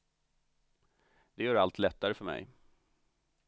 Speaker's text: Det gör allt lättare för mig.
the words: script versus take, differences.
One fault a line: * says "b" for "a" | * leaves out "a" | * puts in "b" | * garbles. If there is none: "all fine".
all fine